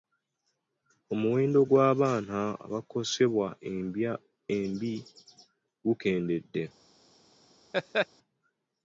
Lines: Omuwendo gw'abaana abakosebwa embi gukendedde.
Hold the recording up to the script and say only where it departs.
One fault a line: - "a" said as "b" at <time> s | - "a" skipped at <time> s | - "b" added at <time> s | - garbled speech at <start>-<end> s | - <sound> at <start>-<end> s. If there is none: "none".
- laugh at 7.7-8.1 s